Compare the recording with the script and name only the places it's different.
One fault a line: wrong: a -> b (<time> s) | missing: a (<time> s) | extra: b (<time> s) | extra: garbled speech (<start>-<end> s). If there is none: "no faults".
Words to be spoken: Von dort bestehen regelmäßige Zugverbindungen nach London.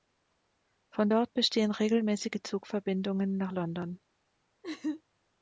no faults